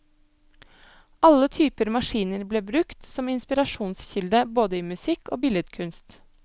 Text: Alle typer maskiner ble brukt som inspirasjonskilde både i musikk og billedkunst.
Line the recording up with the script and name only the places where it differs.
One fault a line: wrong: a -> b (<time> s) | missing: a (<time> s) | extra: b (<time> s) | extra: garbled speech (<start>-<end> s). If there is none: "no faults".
no faults